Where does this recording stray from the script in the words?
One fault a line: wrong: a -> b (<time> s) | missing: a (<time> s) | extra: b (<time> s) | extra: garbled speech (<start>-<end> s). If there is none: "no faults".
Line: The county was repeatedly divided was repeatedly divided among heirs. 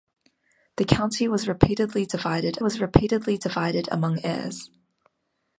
no faults